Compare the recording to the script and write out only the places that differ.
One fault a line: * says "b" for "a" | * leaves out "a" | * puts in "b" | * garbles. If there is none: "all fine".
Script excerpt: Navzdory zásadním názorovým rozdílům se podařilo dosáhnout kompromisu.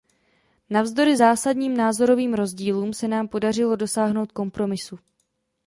* puts in "nám"